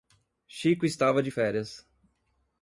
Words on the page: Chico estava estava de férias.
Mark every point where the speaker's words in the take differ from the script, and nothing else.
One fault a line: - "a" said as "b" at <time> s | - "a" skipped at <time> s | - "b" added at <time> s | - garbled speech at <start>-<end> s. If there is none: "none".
- "estava" skipped at 1.2 s